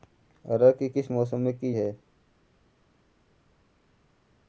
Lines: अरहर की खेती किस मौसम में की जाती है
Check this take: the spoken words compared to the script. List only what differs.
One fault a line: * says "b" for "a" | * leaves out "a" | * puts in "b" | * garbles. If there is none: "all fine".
* leaves out "खेती"
* leaves out "जाती"